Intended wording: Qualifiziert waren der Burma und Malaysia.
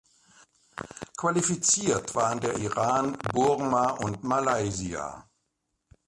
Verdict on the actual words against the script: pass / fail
fail